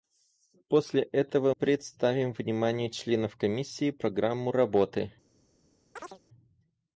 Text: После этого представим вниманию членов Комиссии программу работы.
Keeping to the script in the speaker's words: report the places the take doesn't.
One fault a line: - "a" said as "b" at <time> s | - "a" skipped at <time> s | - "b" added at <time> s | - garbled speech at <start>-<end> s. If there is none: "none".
none